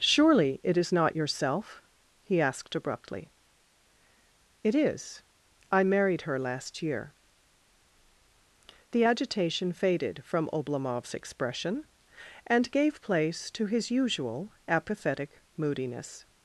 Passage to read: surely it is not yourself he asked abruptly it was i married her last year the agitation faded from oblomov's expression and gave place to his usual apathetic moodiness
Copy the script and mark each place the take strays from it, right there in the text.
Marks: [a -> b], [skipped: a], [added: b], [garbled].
surely it is not yourself he asked abruptly it [was -> is] i married her last year the agitation faded from oblomov's expression and gave place to his usual apathetic moodiness